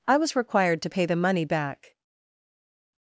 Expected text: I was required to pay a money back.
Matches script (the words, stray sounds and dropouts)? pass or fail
fail